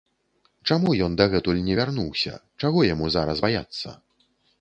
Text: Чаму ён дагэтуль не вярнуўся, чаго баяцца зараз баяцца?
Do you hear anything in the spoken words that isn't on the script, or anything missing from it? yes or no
yes